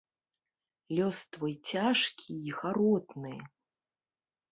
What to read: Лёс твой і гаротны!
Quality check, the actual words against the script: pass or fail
fail